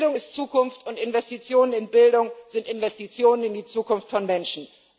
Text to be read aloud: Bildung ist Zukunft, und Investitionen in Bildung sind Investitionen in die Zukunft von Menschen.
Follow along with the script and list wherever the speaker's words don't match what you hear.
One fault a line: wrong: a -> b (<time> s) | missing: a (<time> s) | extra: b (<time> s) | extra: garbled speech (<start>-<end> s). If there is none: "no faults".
no faults